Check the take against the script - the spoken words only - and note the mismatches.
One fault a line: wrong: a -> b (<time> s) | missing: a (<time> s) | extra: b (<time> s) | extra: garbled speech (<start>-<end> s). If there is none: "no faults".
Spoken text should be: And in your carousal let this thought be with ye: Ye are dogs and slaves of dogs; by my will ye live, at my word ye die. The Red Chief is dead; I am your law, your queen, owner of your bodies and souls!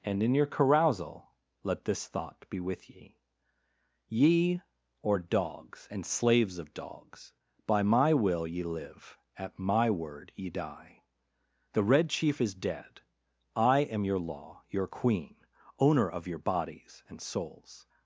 wrong: are -> or (5.0 s)